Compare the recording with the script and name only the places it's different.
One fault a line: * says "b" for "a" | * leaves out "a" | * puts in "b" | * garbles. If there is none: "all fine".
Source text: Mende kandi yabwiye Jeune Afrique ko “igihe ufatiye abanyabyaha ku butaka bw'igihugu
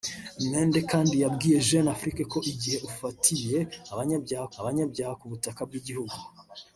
* puts in "abanyabyaha"